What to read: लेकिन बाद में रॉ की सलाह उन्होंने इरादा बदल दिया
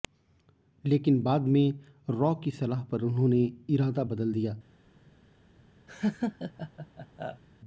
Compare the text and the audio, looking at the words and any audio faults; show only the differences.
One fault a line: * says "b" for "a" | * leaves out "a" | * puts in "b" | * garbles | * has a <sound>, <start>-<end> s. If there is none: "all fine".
* puts in "पर"
* has a laugh, 5.9-7.4 s